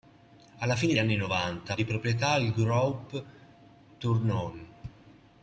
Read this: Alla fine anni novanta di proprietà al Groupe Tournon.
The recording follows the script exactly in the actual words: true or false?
true